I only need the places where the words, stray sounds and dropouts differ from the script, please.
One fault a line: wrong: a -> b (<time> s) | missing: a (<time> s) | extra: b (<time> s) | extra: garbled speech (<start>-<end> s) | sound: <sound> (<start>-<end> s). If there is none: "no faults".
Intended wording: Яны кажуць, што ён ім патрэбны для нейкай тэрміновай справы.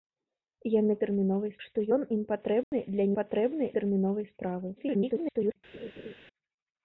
wrong: кажуць -> тэрміновай (1.0 s)
sound: dropout (2.6-2.7 s)
wrong: нейкай -> патрэбны (3.2 s)
extra: garbled speech (4.8-5.6 s)
sound: laugh (5.7-6.1 s)